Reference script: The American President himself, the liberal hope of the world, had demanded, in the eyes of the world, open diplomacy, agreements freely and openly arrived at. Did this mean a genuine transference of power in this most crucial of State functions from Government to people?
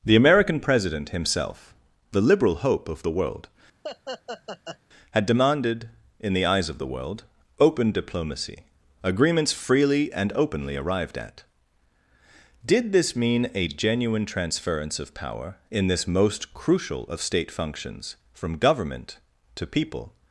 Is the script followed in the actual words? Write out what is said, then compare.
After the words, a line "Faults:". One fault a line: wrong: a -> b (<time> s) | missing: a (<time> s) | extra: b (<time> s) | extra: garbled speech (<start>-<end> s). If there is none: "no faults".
The American President himself, the liberal hope of the world, had demanded, in the eyes of the world, open diplomacy, agreements freely and openly arrived at. Did this mean a genuine transference of power in this most crucial of State functions from Government to people?
Faults:
no faults